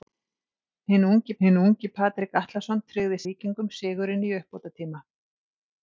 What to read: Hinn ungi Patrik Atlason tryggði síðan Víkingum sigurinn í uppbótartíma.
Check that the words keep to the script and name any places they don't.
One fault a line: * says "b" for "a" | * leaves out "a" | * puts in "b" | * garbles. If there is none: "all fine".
* puts in "hinn ungi"
* leaves out "síðan"